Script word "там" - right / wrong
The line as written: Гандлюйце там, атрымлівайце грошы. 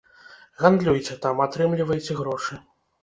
right